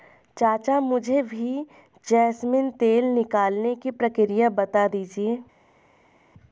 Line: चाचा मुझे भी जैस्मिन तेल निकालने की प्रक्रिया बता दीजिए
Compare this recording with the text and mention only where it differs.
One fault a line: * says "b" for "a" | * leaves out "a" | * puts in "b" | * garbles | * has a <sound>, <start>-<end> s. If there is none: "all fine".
all fine